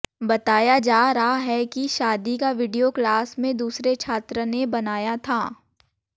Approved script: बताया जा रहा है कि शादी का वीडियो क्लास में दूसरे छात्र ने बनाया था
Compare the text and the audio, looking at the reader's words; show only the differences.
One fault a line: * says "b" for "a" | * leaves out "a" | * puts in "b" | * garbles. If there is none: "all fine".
all fine